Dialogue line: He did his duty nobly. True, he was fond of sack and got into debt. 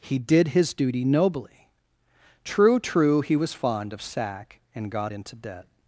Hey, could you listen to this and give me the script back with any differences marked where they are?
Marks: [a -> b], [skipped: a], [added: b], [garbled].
He did his duty nobly. True, [added: True] he was fond of sack and got into debt.